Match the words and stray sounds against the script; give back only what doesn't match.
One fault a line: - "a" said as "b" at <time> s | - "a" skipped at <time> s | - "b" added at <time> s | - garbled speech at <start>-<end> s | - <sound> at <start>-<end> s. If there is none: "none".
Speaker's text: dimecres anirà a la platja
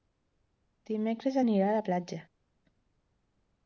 none